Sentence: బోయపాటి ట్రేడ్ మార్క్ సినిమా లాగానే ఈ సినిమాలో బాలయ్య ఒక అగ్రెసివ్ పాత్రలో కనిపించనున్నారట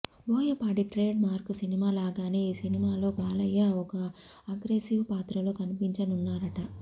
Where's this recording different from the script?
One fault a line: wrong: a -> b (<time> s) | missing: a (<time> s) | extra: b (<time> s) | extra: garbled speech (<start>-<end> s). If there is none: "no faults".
no faults